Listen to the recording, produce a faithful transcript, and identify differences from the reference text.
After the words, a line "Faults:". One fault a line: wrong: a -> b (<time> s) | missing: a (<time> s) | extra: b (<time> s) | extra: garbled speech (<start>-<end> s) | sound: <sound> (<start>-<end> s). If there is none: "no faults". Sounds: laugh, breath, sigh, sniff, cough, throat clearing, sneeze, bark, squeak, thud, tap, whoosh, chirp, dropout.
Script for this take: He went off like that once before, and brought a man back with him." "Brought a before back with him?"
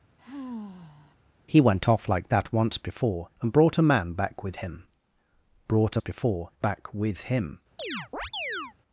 He went off like that once before, and brought a man back with him." "Brought a before back with him?"
Faults:
sound: sigh (0.2-1.2 s)
sound: chirp (7.8-8.7 s)